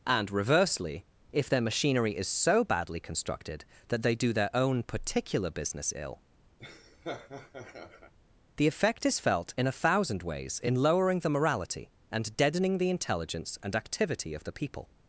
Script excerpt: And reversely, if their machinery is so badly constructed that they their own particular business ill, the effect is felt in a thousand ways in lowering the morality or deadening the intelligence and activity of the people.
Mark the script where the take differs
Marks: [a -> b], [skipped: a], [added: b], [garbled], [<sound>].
And reversely, if their machinery is so badly constructed that they [added: do] their own particular business ill, [laugh] the effect is felt in a thousand ways in lowering the morality [or -> and] deadening the intelligence and activity of the people.